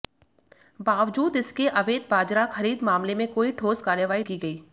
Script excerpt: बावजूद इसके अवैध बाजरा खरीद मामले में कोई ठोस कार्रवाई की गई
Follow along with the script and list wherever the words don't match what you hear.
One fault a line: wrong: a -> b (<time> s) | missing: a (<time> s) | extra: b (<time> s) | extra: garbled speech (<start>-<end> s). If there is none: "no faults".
no faults